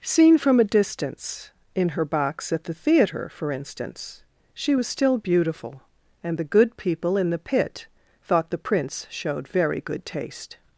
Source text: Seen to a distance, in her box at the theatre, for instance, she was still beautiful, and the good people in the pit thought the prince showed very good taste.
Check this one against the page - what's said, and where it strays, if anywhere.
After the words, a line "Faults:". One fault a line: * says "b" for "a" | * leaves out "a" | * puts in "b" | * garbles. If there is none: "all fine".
Seen from a distance, in her box at the theatre, for instance, she was still beautiful, and the good people in the pit thought the prince showed very good taste.
Faults:
* says "from" for "to"